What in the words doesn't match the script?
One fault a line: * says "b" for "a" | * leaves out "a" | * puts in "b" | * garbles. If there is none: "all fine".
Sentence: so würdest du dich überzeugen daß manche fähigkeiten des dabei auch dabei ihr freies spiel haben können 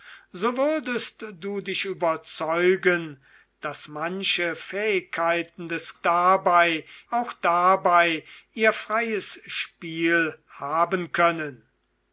all fine